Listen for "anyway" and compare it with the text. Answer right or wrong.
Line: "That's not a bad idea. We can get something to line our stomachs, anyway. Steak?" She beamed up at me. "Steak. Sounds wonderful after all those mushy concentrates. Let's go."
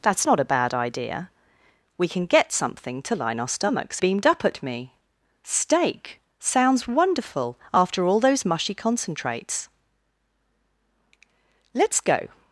wrong